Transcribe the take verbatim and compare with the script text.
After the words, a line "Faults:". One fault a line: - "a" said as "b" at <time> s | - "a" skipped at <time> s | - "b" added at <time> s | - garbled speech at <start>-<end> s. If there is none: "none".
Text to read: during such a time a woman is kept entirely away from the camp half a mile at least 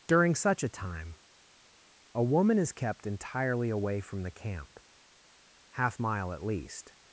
during such a time a woman is kept entirely away from the camp half mile at least
Faults:
- "a" skipped at 6.0 s